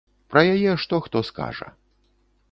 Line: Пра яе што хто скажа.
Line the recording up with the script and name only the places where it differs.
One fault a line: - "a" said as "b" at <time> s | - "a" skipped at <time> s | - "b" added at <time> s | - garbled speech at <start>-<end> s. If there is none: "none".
none